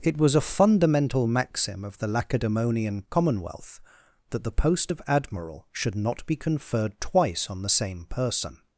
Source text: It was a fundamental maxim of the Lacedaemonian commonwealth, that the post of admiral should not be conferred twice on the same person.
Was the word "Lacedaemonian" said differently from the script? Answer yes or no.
no